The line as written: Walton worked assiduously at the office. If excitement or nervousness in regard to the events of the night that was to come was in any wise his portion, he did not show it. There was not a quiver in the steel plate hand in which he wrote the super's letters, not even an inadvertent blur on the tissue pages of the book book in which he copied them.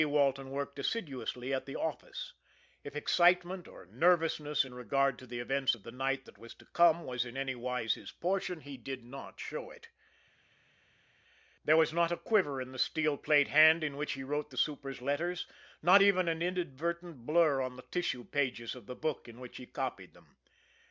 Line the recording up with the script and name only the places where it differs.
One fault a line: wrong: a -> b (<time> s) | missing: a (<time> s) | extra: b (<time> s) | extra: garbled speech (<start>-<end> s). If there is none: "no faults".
missing: book (19.3 s)